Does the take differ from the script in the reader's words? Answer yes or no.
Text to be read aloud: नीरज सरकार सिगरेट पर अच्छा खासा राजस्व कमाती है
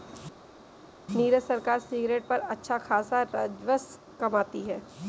no